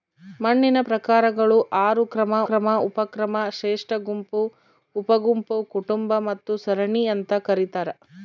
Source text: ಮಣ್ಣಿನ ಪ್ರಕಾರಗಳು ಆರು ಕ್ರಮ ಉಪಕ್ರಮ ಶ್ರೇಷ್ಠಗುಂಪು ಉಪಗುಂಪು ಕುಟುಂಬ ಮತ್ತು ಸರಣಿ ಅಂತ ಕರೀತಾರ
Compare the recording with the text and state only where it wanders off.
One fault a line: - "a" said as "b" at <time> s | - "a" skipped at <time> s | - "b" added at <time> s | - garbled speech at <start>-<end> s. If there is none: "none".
- "ಕ್ರಮ" added at 2.5 s